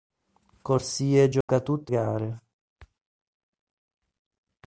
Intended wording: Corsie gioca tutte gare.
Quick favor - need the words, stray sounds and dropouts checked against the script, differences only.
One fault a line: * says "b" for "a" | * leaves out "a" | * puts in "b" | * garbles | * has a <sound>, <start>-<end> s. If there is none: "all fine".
* has a dropout, 1.4-1.5 s